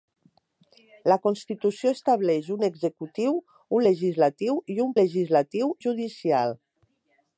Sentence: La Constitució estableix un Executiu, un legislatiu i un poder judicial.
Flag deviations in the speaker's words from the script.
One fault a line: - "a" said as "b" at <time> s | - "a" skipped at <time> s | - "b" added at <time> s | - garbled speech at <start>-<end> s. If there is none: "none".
- "poder" said as "legislatiu" at 5.0 s